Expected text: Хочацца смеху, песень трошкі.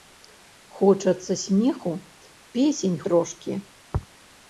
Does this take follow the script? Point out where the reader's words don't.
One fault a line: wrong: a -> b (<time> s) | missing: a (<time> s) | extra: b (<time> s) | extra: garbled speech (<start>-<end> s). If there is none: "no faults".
no faults